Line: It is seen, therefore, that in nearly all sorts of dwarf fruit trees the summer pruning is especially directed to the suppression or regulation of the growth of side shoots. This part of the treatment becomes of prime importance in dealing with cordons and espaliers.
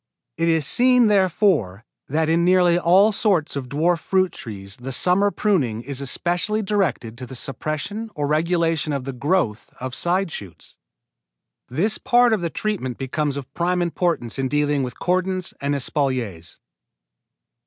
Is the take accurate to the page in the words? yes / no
yes